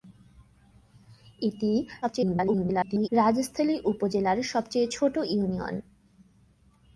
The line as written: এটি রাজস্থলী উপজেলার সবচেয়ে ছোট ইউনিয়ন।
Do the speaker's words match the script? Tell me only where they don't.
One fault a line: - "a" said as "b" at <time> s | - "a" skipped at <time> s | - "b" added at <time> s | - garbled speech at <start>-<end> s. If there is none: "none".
- garbled speech at 2.0-3.1 s